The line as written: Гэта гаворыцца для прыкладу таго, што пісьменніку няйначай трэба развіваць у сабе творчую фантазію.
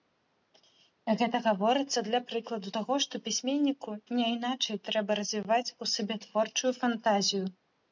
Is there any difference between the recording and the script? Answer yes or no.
no